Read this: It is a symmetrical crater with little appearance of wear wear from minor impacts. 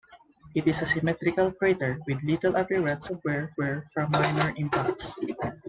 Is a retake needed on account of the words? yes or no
no